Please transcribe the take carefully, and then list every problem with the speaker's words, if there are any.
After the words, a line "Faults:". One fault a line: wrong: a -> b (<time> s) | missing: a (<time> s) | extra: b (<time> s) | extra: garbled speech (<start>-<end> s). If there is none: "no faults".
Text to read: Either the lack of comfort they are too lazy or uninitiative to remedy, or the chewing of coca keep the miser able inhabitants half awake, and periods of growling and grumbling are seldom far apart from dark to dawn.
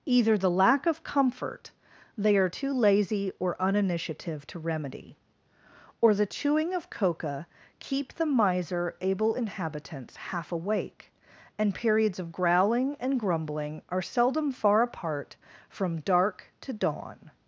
Either the lack of comfort they are too lazy or uninitiative to remedy, or the chewing of coca keep the miser able inhabitants half awake, and periods of growling and grumbling are seldom far apart from dark to dawn.
Faults:
no faults